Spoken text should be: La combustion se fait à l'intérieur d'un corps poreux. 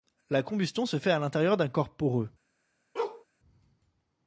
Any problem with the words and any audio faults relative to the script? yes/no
yes